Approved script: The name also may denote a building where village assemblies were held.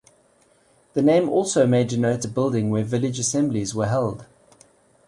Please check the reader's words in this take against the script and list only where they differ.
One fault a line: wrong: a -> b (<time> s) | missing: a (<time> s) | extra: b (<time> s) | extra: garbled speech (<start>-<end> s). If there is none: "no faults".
no faults